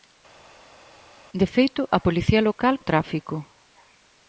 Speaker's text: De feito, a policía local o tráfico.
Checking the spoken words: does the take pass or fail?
pass